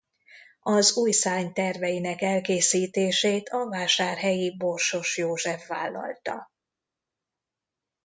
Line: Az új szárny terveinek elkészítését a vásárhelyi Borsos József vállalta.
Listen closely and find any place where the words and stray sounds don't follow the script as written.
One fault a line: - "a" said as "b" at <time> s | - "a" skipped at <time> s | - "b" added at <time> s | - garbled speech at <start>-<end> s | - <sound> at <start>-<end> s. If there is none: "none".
none